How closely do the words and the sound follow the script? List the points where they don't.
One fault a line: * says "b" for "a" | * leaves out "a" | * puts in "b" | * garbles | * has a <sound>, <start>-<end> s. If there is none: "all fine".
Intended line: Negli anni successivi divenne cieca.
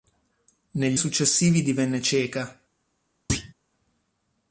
* leaves out "anni"
* has a thud, 3.3-3.5 s